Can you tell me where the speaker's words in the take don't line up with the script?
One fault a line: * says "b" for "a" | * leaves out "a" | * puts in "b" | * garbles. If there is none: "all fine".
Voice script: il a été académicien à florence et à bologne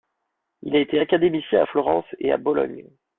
all fine